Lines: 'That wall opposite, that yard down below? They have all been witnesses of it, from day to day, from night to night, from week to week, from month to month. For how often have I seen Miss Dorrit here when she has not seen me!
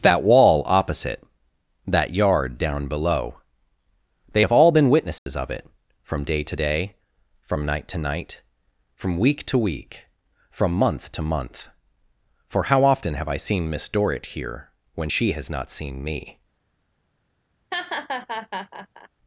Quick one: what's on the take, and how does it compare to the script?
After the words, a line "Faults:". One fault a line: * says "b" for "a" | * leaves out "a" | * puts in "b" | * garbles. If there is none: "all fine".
'That wall opposite, that yard down below? They have all been witnesses of it, from day to day, from night to night, from week to week, from month to month. For how often have I seen Miss Dorrit here when she has not seen me!
Faults:
all fine